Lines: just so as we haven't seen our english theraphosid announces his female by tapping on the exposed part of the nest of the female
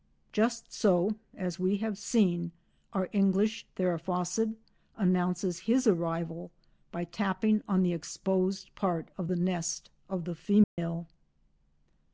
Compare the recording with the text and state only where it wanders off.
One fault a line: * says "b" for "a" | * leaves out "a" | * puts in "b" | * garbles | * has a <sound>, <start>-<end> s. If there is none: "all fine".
* says "have" for "haven't"
* says "arrival" for "female"
* has a dropout, 10.6-10.8 s